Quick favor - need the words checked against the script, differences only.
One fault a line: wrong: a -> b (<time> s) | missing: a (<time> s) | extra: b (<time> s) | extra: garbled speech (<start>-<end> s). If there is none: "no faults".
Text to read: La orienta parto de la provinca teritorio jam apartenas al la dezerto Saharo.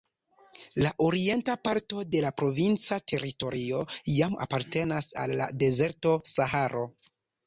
no faults